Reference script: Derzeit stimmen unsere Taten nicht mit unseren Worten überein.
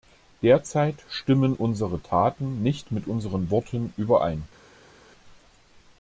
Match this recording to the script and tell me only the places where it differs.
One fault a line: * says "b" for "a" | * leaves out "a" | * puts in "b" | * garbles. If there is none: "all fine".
all fine